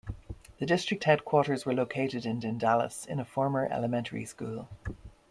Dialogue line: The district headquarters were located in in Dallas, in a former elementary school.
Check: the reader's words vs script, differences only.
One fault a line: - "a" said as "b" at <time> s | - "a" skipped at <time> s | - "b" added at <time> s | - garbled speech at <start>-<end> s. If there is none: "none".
none